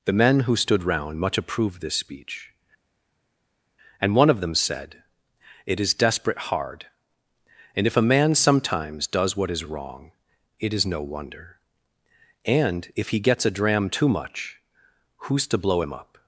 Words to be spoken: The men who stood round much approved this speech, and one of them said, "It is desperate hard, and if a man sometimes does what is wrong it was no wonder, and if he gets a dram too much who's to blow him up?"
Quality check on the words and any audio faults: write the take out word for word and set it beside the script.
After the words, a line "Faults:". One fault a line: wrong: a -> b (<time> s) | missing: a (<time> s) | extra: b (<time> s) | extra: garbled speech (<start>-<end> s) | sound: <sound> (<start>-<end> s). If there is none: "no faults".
The men who stood round much approved this speech, and one of them said, "It is desperate hard, and if a man sometimes does what is wrong it is no wonder, and if he gets a dram too much who's to blow him up?"
Faults:
wrong: was -> is (10.7 s)